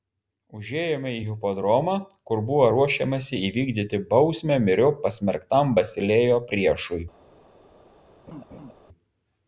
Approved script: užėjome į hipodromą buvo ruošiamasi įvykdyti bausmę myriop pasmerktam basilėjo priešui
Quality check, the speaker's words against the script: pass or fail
fail